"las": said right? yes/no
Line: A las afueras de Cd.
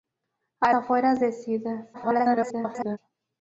no